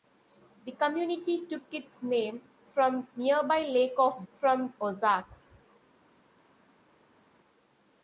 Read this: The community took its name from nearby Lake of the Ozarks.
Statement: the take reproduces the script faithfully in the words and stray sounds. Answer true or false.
false